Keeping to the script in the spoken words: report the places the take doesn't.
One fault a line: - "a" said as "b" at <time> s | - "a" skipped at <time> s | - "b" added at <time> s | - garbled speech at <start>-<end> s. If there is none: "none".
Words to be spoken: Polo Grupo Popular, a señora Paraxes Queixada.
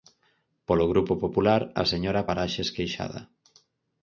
none